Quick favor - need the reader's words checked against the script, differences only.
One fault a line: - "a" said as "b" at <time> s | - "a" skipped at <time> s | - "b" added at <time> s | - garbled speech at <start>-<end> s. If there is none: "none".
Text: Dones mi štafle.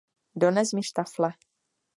none